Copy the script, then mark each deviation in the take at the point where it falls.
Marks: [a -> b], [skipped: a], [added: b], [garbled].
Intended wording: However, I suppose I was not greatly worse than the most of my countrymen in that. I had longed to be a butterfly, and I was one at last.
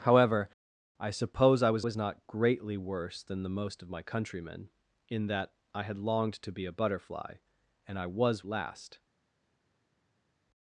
However, I suppose I was [added: was] not greatly worse than the most of my countrymen in that. I had longed to be a butterfly, and I was [skipped: one at] last.